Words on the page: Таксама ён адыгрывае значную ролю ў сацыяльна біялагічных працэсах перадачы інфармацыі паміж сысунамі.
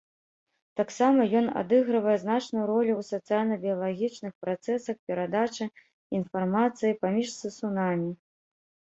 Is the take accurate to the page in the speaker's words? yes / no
yes